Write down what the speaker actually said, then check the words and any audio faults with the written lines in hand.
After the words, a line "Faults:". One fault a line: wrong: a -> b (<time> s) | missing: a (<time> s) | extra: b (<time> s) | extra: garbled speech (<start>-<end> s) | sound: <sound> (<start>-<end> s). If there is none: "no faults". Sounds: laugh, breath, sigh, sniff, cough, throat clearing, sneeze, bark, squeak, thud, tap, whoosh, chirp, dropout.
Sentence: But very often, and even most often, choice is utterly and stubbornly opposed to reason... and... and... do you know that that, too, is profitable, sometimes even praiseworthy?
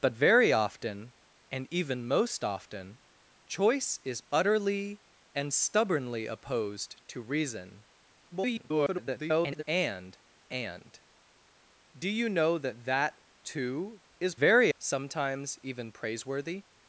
But very often, and even most often, choice is utterly and stubbornly opposed to reason... [garbled] and... and... do you know that that, too, is very, sometimes even praiseworthy?
Faults:
extra: garbled speech (8.3-9.6 s)
wrong: profitable -> very (14.4 s)